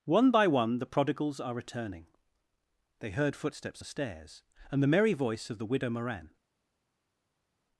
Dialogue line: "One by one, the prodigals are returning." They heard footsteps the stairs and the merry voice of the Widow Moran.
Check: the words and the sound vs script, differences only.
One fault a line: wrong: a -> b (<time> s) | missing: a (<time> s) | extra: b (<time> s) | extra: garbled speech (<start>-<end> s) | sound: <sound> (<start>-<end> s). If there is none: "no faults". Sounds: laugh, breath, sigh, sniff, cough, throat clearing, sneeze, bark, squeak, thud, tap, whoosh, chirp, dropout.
no faults